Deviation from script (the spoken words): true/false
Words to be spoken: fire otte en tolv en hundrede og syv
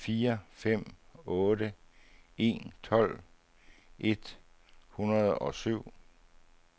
true